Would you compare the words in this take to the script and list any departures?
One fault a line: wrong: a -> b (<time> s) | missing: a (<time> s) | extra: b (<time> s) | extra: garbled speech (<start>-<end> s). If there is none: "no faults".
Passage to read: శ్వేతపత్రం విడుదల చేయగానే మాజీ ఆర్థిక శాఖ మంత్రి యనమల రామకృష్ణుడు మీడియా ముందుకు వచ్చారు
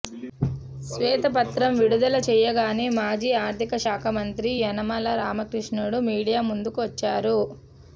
no faults